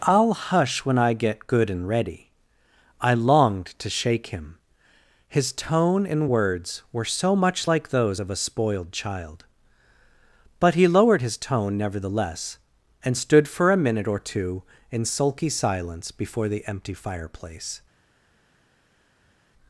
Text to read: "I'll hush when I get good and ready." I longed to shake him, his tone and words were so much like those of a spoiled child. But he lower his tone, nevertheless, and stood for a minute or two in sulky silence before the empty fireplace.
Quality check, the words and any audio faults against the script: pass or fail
fail